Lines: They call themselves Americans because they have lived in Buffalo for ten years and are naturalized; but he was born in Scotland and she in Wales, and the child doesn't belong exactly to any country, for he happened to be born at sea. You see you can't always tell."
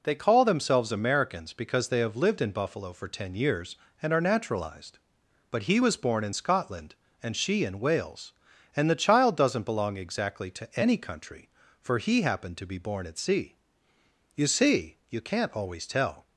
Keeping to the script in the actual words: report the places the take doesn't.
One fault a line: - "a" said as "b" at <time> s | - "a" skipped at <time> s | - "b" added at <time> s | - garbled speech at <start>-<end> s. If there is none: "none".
none